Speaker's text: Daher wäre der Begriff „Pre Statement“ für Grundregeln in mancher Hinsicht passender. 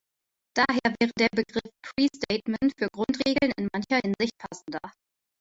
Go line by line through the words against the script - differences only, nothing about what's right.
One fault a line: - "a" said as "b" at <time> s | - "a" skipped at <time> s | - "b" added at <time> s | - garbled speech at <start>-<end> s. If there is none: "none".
none